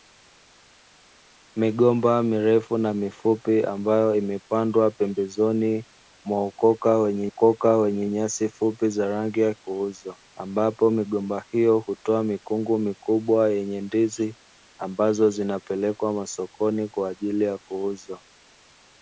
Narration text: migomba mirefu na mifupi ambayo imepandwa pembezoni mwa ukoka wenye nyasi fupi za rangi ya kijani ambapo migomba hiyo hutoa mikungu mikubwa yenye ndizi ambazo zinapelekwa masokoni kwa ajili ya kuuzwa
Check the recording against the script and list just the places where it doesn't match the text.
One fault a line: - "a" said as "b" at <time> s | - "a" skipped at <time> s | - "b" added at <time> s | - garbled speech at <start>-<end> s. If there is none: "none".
- "ukoka wenye" added at 7.3 s
- "kijani" said as "kuuzwa" at 9.5 s